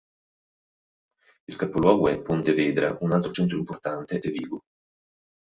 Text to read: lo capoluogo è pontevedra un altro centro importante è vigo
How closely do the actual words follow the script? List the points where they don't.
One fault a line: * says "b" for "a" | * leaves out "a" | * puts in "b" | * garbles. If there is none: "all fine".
* says "il" for "lo"